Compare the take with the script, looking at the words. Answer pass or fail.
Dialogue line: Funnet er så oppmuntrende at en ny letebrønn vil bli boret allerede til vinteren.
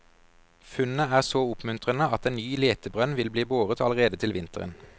pass